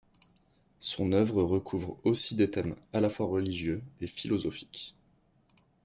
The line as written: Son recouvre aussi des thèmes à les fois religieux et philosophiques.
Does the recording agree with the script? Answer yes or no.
no